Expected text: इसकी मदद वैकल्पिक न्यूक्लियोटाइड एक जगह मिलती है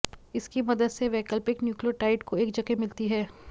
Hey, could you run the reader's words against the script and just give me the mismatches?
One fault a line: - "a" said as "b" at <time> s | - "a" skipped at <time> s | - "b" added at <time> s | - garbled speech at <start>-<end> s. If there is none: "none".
- "से" added at 0.9 s
- "को" added at 2.2 s